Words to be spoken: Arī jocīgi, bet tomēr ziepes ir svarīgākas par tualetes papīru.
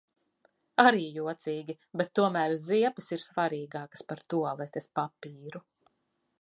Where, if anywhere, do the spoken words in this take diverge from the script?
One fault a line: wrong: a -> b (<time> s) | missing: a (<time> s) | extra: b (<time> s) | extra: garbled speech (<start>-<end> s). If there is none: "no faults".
no faults